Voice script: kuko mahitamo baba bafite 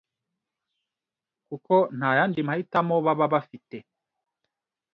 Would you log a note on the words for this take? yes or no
yes